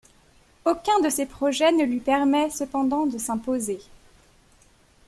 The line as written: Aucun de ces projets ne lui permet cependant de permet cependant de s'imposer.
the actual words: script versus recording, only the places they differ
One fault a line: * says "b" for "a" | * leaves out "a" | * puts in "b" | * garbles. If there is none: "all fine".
* leaves out "permet cependant de"